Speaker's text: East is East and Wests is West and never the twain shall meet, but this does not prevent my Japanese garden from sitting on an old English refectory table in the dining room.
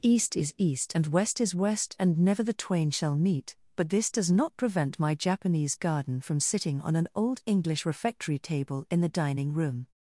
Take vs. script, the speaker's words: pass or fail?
fail